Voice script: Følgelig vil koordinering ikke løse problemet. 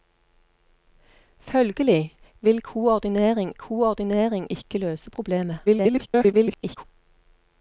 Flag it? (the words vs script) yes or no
yes